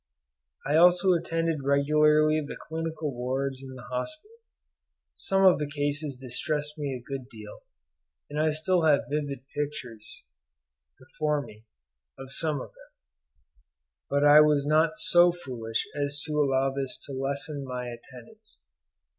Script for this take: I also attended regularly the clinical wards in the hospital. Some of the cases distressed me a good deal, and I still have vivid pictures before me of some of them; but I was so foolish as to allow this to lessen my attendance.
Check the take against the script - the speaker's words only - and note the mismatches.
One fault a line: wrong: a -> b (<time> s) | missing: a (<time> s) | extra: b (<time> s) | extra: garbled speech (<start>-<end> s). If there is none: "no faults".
extra: not (14.7 s)